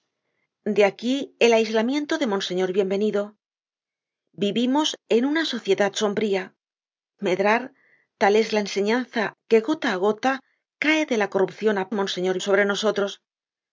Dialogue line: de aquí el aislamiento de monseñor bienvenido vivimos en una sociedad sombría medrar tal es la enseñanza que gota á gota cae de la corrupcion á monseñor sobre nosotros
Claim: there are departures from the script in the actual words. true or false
false